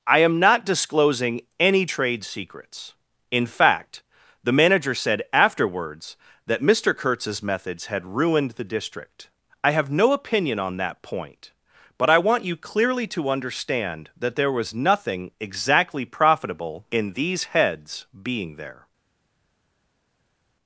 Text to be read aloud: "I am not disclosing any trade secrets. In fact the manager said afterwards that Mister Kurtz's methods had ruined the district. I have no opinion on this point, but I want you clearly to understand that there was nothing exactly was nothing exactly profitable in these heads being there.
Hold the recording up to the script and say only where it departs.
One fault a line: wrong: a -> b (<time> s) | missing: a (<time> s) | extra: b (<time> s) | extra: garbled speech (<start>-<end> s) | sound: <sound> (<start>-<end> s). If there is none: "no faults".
wrong: this -> that (10.8 s)
missing: was nothing exactly (16.0 s)